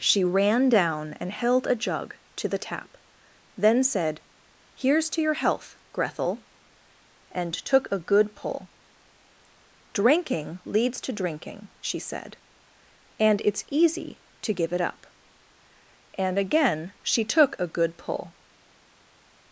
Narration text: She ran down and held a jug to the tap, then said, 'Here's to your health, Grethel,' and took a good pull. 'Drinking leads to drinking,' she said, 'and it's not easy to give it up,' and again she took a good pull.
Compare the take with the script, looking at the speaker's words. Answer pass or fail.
fail